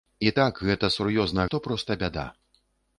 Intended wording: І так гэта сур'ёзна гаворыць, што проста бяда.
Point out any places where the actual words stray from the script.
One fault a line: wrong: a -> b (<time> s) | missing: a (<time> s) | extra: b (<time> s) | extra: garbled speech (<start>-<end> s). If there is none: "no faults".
missing: гаворыць (1.5 s)